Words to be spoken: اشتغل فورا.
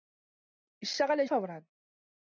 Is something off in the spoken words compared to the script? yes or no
no